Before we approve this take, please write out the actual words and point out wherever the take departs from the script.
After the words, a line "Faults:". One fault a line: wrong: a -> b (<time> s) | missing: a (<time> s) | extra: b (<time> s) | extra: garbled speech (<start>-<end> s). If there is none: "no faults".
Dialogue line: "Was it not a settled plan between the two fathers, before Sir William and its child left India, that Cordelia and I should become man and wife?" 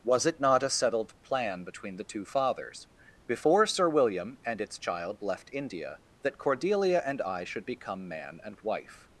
"Was it not a settled plan between the two fathers, before Sir William and its child left India, that Cordelia and I should become man and wife?"
Faults:
no faults